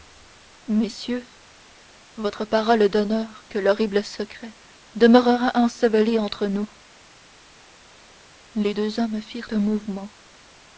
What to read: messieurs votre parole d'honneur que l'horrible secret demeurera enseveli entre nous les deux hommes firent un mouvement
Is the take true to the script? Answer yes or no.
yes